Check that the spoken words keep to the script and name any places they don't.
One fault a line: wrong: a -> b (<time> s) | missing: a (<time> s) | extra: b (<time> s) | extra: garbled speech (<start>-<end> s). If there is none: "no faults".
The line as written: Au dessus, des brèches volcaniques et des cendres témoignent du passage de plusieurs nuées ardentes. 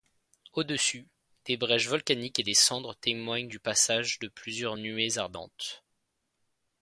no faults